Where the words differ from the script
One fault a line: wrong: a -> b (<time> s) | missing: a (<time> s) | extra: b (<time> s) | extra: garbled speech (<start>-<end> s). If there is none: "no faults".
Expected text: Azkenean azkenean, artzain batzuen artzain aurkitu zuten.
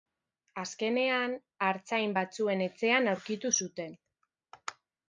missing: azkenean (1.4 s)
wrong: artzain -> etxean (2.7 s)